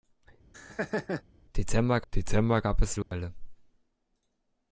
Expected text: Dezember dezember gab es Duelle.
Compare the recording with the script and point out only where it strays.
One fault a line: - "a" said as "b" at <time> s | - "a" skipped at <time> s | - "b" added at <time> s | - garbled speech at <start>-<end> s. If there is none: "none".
none